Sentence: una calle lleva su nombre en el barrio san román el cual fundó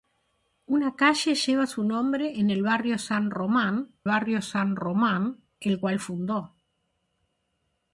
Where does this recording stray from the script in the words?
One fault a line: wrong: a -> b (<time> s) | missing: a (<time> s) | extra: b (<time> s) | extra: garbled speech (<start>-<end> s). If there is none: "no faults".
extra: barrio san román (4.0 s)